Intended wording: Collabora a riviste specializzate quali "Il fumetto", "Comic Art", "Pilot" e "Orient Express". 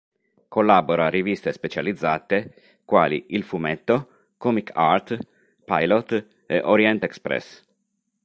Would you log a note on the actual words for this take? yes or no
no